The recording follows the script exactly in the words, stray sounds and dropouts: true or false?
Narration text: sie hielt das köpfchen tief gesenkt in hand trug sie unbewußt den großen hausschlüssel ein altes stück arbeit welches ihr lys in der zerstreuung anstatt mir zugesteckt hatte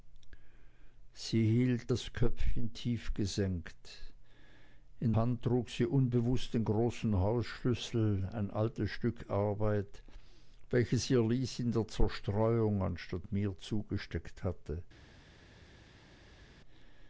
true